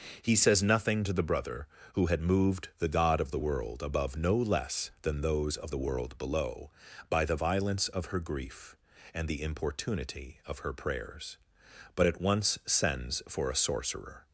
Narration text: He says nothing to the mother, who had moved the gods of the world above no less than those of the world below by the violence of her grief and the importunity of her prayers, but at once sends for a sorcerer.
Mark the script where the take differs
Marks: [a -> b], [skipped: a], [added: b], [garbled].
He says nothing to the [mother, -> brother] who had moved the [gods -> god] of the world above no less than those of the world below by the violence of her grief and the importunity of her prayers, but at once sends for a sorcerer.